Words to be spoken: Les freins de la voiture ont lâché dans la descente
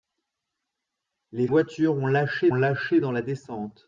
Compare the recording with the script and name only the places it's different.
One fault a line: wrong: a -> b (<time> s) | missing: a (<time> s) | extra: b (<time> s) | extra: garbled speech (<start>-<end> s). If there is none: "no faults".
missing: freins de la (1.5 s)
extra: lâché (2.5 s)